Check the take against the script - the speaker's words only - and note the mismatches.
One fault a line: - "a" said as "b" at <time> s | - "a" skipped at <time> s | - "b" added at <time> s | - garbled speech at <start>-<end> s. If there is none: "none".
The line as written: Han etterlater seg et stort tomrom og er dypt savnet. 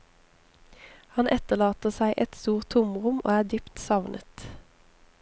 none